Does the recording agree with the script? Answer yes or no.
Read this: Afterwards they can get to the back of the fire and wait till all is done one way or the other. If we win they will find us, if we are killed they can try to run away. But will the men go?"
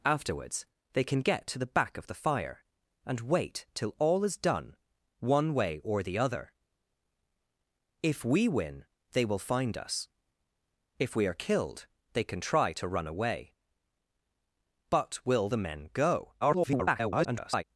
no